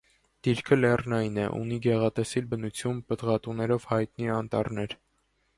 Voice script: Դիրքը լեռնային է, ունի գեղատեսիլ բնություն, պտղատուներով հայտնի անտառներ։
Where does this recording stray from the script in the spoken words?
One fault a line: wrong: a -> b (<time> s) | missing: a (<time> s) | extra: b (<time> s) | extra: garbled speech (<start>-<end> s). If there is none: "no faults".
no faults